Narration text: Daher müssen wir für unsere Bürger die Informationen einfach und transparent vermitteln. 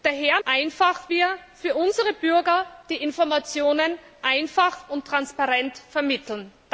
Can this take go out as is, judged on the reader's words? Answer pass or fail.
fail